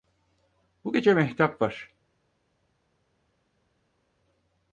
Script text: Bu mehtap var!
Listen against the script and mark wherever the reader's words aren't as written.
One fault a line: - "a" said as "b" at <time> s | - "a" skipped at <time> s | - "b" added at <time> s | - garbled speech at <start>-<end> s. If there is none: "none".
- "gece" added at 0.9 s